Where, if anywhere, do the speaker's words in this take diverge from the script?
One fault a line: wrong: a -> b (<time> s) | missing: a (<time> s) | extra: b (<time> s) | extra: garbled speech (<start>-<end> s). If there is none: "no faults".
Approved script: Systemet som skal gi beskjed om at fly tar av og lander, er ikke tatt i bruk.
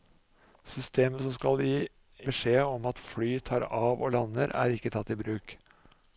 no faults